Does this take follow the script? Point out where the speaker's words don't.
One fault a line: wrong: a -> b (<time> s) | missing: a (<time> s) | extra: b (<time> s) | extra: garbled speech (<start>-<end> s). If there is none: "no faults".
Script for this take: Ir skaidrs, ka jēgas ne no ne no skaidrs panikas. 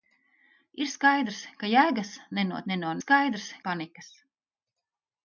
no faults